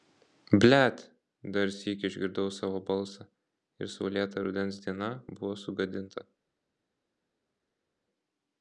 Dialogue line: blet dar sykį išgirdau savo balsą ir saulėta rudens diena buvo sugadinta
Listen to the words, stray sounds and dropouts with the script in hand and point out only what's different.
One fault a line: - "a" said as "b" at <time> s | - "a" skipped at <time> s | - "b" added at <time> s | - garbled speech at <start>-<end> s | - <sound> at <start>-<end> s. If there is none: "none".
none